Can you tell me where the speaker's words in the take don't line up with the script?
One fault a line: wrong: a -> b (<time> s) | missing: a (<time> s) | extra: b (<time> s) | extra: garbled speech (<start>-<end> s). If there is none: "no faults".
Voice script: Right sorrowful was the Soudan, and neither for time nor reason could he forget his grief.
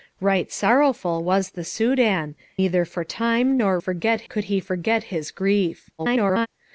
missing: and (2.3 s)
wrong: reason -> forget (3.8 s)
extra: garbled speech (6.0-6.5 s)